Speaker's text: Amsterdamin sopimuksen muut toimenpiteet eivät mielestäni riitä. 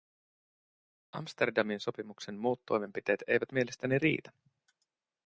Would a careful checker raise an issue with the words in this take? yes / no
no